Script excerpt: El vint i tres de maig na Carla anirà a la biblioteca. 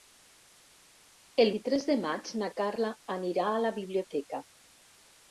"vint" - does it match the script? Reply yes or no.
no